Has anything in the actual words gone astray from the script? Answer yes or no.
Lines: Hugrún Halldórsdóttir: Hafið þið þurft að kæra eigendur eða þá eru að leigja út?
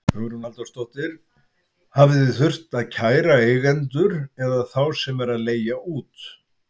yes